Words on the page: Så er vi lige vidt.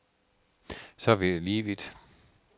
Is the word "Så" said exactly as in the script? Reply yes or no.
yes